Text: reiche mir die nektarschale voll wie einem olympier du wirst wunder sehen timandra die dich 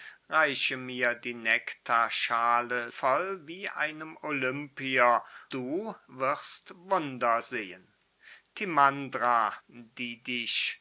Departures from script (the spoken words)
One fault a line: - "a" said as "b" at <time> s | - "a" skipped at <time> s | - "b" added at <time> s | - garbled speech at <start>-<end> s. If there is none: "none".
none